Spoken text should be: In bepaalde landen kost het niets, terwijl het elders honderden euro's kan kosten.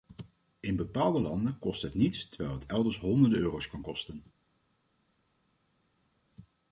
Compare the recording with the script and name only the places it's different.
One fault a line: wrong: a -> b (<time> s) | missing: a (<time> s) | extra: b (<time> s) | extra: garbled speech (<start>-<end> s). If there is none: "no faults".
no faults